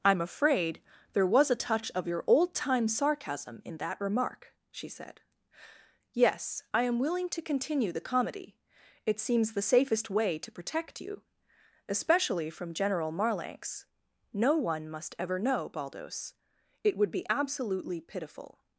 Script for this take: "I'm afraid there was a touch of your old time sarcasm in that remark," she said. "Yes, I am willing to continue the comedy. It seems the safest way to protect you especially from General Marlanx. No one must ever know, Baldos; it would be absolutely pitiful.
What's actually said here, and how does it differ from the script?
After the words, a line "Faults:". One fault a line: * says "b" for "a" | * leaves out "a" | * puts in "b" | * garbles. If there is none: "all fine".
"I'm afraid there was a touch of your old time sarcasm in that remark," she said. "Yes, I am willing to continue the comedy. It seems the safest way to protect you especially from General Marlanx. No one must ever know, Baldos; it would be absolutely pitiful.
Faults:
all fine